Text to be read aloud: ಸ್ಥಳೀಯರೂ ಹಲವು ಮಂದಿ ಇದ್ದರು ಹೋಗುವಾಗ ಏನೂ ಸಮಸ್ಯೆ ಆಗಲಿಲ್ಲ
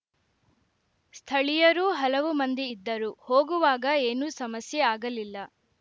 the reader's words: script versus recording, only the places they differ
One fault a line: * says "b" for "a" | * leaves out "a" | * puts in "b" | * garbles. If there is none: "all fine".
all fine